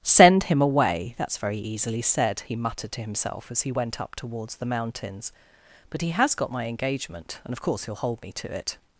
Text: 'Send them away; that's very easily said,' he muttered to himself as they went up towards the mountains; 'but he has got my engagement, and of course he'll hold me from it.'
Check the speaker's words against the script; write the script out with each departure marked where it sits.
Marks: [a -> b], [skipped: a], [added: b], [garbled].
'Send [them -> him] away; that's very easily said,' he muttered to himself as [they -> he] went up towards the mountains; 'but he has got my engagement, and of course he'll hold me [from -> to] it.'